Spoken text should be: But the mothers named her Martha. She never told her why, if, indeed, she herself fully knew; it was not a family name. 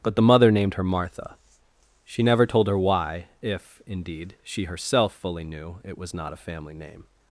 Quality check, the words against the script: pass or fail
fail